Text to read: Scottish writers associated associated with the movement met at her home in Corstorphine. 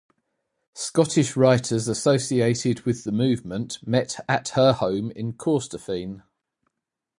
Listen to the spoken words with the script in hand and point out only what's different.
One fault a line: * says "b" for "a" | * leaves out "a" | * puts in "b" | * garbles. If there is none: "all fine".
* leaves out "associated"